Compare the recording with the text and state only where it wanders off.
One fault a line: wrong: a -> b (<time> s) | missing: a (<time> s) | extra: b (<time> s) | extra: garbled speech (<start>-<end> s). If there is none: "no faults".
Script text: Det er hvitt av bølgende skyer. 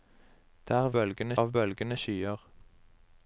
wrong: hvitt -> bølgende (0.9 s)